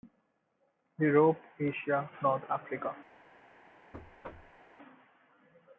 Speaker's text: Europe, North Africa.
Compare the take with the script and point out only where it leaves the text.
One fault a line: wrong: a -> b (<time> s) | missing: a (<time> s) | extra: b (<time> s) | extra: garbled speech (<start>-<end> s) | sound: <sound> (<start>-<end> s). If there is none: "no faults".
extra: Asia (1.6 s)
sound: thud (3.9-4.6 s)